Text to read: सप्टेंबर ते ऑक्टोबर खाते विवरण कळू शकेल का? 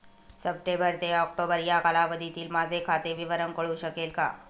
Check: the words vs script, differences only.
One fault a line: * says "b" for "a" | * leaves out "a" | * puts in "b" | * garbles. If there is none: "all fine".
* puts in "या कालावधीतील माझे"